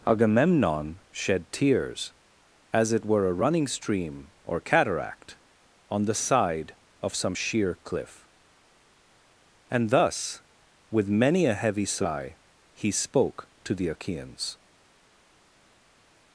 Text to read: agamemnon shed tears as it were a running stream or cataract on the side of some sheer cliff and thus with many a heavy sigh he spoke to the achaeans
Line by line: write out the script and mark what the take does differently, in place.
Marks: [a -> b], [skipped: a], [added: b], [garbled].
agamemnon shed tears as it were a running stream or cataract on the side of some sheer cliff and thus with many a heavy sigh he spoke to the achaeans